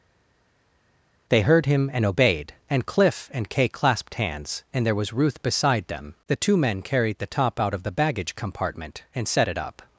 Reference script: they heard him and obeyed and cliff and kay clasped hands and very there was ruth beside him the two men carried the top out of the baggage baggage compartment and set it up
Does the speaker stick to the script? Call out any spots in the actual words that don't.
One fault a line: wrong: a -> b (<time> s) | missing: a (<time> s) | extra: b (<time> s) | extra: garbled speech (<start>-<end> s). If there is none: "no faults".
missing: very (4.9 s)
wrong: him -> them (5.9 s)
missing: baggage (8.3 s)